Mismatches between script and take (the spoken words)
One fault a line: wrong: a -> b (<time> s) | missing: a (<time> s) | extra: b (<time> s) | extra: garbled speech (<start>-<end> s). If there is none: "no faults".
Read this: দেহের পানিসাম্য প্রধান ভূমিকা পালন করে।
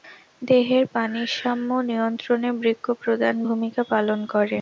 extra: নিয়ন্ত্রণে বৃক্ক (1.9 s)